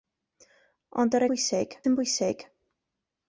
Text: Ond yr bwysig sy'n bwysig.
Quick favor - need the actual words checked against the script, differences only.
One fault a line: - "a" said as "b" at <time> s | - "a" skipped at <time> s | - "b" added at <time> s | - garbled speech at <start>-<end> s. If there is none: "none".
none